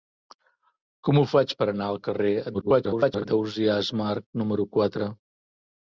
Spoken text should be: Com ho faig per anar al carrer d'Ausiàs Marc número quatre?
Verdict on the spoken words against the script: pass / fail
fail